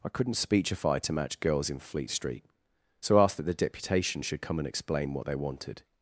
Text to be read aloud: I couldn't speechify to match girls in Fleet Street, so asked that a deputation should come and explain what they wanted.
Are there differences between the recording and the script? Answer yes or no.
yes